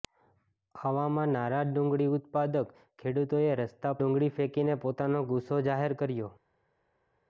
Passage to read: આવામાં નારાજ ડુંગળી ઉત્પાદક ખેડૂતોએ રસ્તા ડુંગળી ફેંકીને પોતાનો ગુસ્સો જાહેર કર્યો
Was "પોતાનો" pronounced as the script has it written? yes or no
yes